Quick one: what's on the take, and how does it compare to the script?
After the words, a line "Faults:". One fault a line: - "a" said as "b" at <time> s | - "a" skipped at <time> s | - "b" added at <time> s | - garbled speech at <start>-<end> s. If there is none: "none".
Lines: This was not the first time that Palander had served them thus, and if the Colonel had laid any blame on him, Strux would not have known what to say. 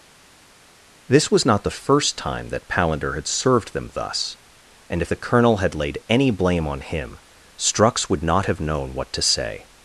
This was not the first time that Palander had served them thus, and if the Colonel had laid any blame on him, Strux would not have known what to say.
Faults:
none